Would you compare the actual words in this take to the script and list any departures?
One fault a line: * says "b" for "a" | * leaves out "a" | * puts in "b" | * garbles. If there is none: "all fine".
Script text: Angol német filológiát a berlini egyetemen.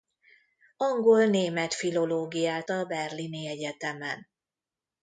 all fine